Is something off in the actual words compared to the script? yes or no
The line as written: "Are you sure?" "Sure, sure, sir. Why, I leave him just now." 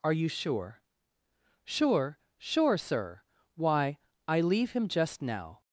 no